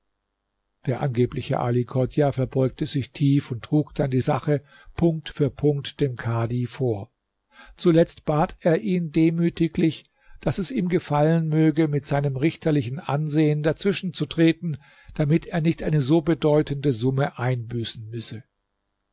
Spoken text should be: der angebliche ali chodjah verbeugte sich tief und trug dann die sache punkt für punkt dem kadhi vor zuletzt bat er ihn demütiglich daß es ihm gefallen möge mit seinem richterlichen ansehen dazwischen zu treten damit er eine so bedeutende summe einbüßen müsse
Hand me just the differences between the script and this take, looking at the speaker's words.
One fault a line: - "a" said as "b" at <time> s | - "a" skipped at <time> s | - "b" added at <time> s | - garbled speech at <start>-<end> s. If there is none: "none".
- "nicht" added at 15.6 s